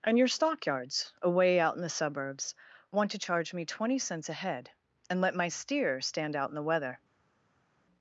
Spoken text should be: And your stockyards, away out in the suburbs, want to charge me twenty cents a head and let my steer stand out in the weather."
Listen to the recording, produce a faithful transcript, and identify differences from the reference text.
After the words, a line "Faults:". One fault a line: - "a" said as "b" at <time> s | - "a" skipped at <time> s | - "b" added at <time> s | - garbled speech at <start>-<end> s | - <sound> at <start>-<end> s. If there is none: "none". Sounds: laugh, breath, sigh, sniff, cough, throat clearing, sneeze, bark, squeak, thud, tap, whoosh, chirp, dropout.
And your stockyards, away out in the suburbs, want to charge me twenty cents a head and let my steer stand out in the weather."
Faults:
none